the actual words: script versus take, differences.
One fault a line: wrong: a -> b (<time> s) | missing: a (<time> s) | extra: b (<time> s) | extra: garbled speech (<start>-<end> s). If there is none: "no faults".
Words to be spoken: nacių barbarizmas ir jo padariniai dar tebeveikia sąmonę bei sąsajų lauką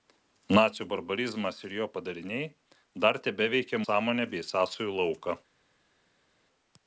no faults